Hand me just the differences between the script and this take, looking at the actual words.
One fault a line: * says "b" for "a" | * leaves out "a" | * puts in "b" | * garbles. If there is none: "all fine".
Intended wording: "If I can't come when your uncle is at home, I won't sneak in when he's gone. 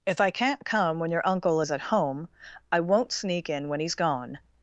all fine